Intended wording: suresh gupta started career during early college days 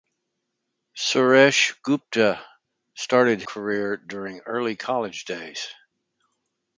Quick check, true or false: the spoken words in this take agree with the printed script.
true